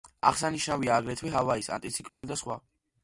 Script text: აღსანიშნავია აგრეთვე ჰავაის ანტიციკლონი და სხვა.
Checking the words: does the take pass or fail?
pass